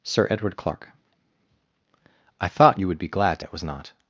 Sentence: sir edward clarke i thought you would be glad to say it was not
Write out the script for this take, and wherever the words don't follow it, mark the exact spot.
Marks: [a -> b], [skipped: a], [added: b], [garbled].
sir edward clarke i thought you would be glad to [skipped: say] it was not